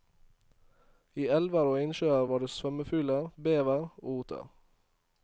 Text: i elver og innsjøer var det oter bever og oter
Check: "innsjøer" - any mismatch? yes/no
no